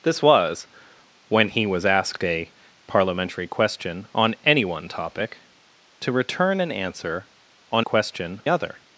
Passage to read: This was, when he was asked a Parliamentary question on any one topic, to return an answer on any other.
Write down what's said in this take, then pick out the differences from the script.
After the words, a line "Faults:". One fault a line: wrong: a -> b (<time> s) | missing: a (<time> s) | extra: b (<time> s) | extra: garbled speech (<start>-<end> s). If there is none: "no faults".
This was, when he was asked a Parliamentary question on any one topic, to return an answer on question other.
Faults:
wrong: any -> question (7.8 s)